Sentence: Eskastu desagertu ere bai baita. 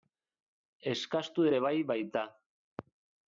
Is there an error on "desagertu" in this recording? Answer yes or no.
yes